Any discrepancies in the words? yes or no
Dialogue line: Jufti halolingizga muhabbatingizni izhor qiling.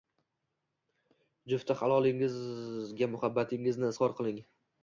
no